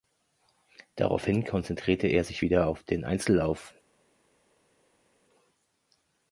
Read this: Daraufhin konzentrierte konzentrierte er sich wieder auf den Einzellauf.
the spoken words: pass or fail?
fail